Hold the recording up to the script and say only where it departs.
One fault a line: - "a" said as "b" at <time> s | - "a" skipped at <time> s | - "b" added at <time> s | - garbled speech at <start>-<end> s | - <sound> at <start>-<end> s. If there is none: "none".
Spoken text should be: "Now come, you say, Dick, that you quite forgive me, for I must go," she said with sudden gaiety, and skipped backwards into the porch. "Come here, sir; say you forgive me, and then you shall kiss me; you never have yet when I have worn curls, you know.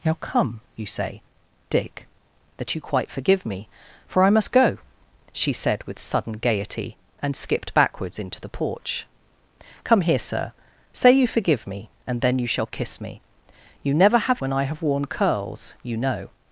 - "yet" skipped at 14.4 s